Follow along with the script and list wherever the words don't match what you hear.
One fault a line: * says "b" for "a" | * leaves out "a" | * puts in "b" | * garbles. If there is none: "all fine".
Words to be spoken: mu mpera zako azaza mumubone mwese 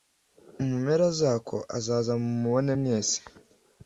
all fine